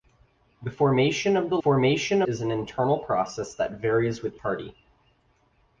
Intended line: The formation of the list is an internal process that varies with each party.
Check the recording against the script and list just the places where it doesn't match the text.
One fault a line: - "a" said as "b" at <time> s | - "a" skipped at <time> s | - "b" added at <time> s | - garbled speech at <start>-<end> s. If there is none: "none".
- "list" said as "formation" at 1.6 s
- "each" skipped at 4.4 s